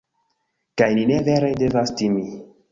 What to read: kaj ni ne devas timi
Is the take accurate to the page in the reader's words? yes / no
no